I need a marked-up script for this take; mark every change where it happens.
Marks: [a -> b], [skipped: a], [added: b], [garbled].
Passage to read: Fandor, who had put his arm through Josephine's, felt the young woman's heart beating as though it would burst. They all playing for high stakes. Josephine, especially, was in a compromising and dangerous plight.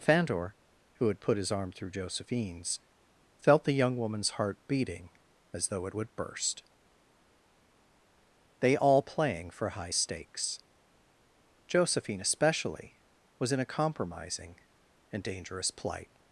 Fandor, who had put his arm through Josephine's, felt the young woman's heart beating as though it would burst. They all playing for high stakes. Josephine, especially, was in a compromising and dangerous plight.